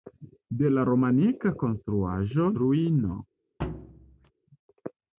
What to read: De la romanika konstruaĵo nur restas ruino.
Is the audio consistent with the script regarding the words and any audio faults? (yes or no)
no